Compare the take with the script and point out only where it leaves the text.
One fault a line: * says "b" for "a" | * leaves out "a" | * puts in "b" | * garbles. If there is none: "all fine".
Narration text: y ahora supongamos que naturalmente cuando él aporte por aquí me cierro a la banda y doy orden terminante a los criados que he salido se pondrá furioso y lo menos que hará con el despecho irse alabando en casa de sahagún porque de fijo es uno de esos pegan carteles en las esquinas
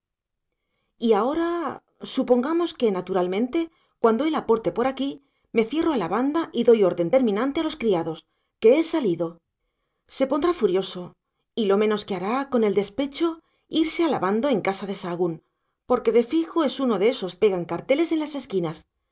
all fine